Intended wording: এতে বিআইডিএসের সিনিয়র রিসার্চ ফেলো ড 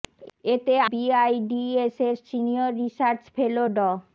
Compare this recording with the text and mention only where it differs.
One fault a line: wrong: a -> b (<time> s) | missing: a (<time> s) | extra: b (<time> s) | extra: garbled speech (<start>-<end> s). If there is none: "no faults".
no faults